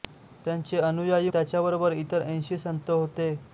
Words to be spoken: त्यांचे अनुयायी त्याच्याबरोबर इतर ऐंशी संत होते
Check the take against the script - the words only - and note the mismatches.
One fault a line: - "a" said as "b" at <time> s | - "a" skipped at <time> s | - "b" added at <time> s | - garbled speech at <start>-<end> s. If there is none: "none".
none